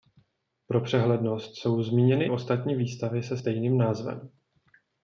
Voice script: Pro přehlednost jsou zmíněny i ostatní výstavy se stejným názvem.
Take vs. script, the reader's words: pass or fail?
fail